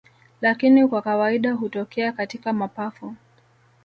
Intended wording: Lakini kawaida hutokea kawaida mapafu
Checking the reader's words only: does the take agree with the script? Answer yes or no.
no